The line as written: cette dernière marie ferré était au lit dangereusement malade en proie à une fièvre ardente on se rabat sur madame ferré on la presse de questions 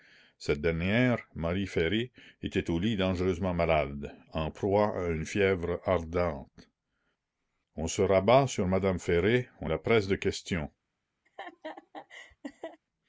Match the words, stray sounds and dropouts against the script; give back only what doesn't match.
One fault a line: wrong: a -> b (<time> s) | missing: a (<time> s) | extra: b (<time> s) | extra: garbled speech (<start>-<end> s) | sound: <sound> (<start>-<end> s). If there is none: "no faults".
sound: laugh (11.3-12.8 s)